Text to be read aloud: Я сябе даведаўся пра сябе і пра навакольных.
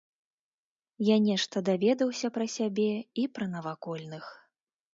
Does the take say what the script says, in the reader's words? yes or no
no